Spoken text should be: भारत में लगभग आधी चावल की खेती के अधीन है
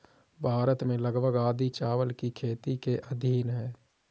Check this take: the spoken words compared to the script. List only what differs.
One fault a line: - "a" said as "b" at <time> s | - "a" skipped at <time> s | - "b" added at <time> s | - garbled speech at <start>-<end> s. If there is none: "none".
none